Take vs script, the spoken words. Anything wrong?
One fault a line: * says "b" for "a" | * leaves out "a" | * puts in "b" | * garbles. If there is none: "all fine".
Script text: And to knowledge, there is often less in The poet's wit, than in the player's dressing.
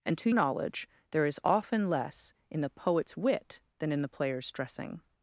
all fine